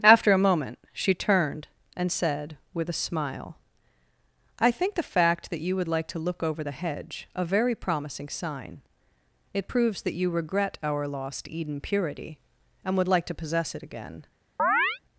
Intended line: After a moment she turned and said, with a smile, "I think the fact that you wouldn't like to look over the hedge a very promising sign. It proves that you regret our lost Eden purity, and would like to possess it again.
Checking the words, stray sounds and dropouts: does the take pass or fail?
fail